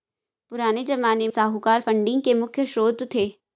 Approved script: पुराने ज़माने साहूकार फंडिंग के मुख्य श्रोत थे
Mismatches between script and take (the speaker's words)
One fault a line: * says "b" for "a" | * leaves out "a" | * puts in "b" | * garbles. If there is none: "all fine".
all fine